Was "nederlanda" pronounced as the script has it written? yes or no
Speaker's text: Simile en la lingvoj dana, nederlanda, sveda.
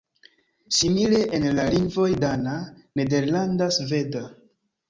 yes